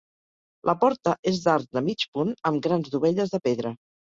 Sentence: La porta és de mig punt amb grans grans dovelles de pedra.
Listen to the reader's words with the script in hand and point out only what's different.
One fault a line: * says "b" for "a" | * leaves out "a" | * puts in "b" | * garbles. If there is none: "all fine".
* puts in "d'arc"
* leaves out "grans"